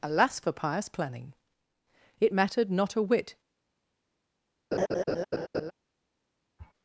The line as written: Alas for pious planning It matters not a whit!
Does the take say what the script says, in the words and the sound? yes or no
no